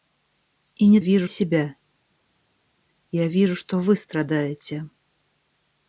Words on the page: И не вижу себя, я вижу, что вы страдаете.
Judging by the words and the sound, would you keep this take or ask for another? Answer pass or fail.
pass